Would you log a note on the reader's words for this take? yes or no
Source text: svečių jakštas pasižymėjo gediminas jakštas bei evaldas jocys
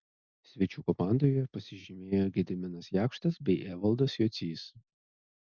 yes